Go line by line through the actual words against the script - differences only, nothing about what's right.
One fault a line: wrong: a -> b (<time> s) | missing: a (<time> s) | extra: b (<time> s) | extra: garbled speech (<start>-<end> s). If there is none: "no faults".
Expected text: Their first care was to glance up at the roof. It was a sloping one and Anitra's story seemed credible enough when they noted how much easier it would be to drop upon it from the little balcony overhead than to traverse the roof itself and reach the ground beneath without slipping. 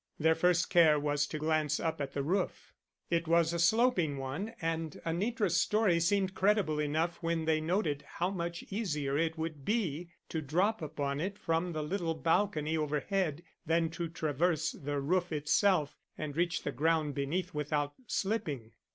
no faults